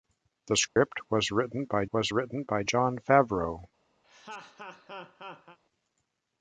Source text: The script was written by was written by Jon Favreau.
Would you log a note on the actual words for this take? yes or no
no